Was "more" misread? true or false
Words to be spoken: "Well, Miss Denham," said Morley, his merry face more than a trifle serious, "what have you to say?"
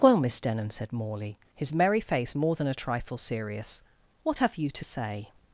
false